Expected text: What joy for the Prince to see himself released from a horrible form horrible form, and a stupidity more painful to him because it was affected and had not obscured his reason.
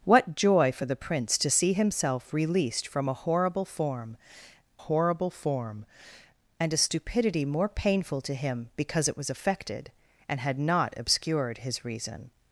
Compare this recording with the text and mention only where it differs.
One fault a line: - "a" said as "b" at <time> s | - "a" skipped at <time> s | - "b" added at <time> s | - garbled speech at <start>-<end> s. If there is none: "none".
none